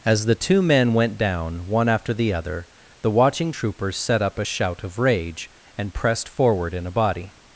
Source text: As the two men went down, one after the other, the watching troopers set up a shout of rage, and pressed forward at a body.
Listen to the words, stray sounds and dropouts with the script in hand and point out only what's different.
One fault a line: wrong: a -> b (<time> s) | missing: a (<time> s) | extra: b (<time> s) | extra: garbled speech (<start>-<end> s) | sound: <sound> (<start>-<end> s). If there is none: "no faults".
wrong: at -> in (6.7 s)